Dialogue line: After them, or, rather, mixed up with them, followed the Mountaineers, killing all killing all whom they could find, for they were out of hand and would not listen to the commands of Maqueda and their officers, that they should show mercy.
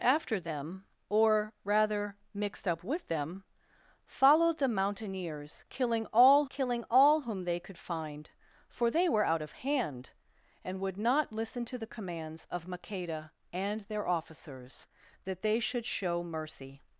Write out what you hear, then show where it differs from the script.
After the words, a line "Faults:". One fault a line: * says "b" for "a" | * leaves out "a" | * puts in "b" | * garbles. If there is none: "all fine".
After them, or, rather, mixed up with them, followed the Mountaineers, killing all killing all whom they could find, for they were out of hand and would not listen to the commands of Maqueda and their officers, that they should show mercy.
Faults:
all fine